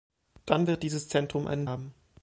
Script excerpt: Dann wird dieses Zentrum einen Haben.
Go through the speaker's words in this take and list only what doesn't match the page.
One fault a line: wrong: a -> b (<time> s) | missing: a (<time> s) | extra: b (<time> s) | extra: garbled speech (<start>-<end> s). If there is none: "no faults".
no faults